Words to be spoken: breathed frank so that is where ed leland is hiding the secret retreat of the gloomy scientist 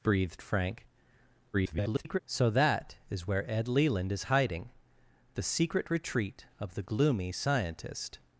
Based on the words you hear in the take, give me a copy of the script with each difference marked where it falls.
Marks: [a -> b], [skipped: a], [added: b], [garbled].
breathed frank [garbled] so that is where ed leland is hiding the secret retreat of the gloomy scientist